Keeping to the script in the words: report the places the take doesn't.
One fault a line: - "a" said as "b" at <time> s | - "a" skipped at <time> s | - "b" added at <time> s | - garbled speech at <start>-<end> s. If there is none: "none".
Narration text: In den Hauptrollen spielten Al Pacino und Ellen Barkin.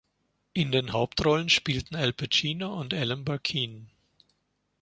none